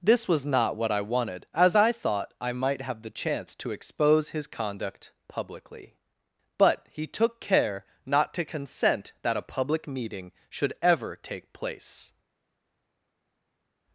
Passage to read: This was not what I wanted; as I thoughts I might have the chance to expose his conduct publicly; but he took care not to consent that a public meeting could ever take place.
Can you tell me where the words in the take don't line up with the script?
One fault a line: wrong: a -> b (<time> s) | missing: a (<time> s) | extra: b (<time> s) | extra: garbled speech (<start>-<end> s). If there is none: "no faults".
wrong: thoughts -> thought (1.9 s)
wrong: could -> should (10.5 s)